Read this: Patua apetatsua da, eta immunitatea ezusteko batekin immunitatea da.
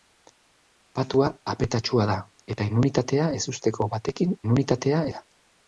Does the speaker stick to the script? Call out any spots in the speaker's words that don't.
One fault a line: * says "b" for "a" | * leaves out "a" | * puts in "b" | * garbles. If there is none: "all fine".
all fine